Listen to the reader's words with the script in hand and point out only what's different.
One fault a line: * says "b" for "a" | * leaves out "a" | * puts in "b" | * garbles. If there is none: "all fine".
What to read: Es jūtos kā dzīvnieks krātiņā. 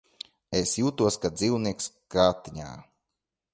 all fine